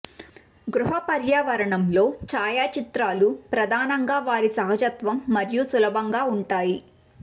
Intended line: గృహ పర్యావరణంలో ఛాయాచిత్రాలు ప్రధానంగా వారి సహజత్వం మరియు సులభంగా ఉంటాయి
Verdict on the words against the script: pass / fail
pass